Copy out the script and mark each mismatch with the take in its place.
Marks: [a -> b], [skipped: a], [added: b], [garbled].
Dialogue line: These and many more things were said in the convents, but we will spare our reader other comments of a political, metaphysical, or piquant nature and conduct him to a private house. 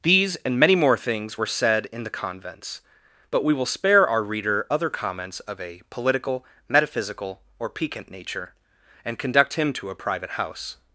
These and many more things were said in the convents, but we will spare our reader other comments of a political, metaphysical, or piquant nature and conduct him to a private house.